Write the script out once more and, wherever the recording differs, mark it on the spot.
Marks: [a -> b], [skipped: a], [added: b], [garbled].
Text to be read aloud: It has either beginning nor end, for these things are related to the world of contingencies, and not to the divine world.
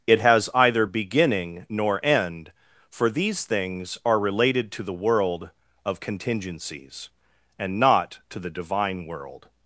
It has either beginning nor end, for these things are related to the world of contingencies, and not to the divine world.